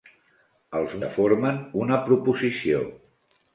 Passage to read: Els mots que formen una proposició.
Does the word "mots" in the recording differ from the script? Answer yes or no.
yes